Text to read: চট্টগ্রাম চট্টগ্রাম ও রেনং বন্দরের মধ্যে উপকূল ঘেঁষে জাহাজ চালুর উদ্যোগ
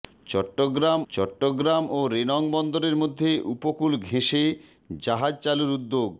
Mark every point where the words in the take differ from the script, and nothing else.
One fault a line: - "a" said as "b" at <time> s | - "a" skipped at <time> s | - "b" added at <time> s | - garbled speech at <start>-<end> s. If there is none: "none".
none